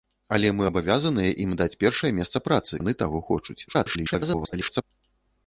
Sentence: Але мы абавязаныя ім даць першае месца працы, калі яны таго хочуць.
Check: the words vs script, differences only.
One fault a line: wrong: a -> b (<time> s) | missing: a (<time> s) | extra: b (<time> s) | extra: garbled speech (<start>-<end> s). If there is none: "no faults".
missing: калі (2.7 s)
extra: garbled speech (3.7-4.8 s)